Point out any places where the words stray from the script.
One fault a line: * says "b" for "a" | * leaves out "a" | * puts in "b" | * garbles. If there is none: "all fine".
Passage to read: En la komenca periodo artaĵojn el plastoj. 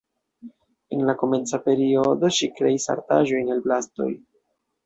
* puts in "ŝi kreis"